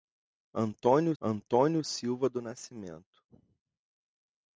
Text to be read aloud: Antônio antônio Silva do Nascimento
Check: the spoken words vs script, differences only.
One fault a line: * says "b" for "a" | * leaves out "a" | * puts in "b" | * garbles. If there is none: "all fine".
all fine